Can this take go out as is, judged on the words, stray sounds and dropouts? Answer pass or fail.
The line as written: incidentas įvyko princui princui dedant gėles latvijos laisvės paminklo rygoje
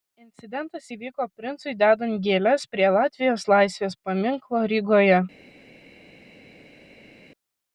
fail